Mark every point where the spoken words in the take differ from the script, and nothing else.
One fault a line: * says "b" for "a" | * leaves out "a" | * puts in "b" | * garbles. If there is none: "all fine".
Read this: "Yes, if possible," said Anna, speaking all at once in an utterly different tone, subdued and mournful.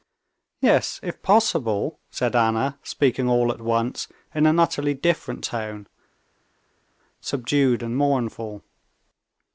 all fine